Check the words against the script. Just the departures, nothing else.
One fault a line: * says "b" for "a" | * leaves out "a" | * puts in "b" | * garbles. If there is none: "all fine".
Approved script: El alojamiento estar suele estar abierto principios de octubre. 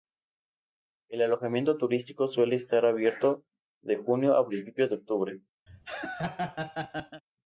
* says "turístico" for "estar"
* puts in "de junio a"